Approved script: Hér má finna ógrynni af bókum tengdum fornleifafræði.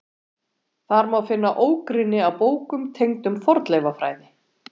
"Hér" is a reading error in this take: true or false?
true